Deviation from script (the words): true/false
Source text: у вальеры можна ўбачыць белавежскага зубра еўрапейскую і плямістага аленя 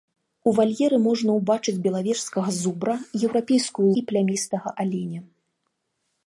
false